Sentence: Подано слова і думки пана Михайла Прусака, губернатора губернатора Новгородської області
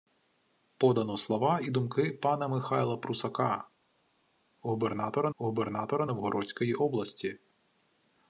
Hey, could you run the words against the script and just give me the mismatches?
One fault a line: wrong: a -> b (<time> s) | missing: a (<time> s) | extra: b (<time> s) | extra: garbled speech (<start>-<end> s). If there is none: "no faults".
no faults